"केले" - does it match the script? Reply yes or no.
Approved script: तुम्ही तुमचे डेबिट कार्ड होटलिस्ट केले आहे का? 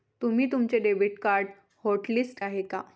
no